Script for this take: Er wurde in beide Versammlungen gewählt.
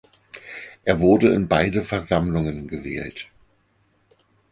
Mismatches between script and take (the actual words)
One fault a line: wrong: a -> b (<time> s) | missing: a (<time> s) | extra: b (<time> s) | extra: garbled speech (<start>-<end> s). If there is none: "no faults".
no faults